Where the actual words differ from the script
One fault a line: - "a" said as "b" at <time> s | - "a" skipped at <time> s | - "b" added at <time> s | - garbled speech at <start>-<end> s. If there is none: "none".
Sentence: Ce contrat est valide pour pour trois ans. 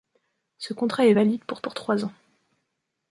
none